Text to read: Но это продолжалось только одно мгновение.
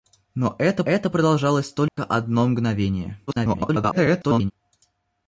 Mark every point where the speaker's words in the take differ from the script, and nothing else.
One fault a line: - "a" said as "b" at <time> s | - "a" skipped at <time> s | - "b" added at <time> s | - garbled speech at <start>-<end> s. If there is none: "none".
- "это" added at 0.8 s
- garbled speech at 3.3-4.5 s